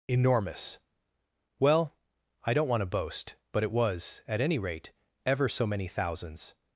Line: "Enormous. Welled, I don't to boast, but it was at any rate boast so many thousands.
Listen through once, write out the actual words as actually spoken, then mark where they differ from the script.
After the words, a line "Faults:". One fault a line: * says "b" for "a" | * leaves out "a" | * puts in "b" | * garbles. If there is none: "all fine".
"Enormous. Well, I don't want to boast, but it was at any rate ever so many thousands.
Faults:
* says "Well" for "Welled"
* puts in "want"
* says "ever" for "boast"